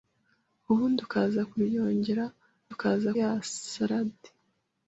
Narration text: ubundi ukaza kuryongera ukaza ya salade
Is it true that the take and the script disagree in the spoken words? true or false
false